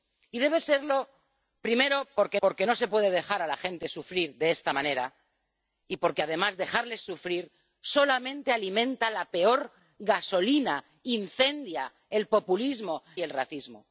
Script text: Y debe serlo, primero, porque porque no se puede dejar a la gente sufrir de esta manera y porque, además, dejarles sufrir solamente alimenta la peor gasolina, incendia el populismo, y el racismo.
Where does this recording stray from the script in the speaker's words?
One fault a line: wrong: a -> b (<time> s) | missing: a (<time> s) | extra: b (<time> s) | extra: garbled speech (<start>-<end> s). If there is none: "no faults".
no faults